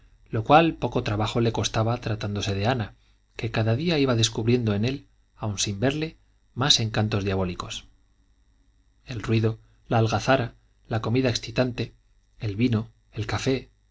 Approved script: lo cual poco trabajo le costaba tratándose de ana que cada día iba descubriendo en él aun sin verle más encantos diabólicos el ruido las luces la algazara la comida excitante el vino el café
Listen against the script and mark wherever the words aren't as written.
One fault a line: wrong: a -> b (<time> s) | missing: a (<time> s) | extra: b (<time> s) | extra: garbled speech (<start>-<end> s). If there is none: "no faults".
missing: las luces (9.6 s)